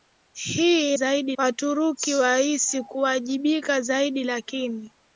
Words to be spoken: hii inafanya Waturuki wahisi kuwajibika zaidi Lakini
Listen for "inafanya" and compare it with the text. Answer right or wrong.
wrong